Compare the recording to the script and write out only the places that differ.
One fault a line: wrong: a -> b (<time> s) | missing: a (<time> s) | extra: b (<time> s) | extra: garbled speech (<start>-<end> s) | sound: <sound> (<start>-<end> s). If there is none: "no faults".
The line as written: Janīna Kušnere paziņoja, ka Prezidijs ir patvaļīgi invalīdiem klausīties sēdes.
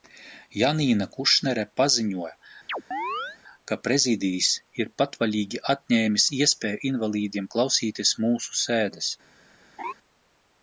sound: chirp (2.7-3.4 s)
extra: atņēmis iespēju (5.7 s)
extra: mūsu (8.3 s)
sound: laugh (9.8-9.9 s)